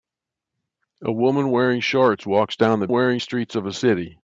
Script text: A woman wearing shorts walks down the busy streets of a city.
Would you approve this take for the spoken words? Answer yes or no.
no